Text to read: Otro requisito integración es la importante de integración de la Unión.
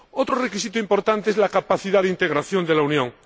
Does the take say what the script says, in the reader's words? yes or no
no